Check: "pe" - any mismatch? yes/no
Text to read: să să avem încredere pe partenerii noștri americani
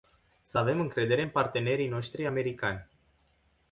yes